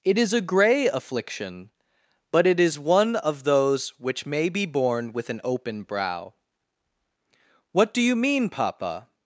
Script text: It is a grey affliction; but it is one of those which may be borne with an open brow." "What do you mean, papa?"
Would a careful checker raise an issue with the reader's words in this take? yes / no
no